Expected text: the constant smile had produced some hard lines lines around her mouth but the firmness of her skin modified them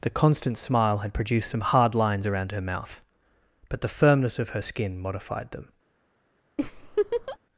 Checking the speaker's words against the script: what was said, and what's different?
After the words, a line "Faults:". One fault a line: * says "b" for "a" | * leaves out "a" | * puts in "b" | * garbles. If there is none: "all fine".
the constant smile had produced some hard lines around her mouth but the firmness of her skin modified them
Faults:
* leaves out "lines"